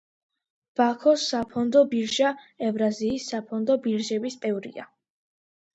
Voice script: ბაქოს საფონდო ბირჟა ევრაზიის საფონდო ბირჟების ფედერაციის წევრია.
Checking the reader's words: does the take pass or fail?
fail